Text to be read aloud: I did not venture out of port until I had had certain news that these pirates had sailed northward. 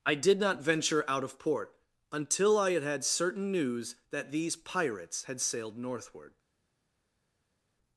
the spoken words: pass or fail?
pass